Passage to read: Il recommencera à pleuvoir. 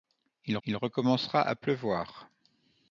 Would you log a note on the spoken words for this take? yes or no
yes